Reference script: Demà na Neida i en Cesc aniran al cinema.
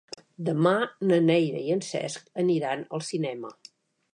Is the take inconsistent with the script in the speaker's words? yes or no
no